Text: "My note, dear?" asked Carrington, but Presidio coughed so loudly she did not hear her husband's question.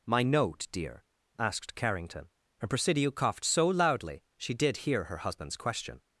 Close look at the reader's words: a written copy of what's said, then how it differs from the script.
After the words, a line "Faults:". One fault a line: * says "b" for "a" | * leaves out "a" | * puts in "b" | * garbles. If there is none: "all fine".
"My note, dear?" asked Carrington, and Presidio coughed so loudly she did hear her husband's question.
Faults:
* says "and" for "but"
* leaves out "not"